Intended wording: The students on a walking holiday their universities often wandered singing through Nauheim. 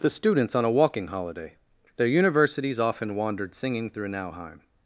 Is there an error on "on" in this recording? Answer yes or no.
no